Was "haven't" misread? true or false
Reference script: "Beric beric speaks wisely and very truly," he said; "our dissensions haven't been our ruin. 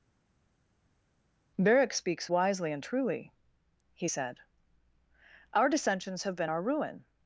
true